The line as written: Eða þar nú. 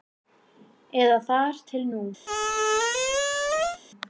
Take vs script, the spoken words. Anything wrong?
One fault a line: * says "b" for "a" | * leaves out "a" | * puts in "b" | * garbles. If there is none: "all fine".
* puts in "til"